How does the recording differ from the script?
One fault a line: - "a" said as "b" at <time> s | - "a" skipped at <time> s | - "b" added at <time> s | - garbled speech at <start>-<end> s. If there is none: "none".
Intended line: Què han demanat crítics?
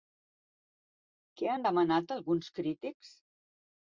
- "alguns" added at 2.2 s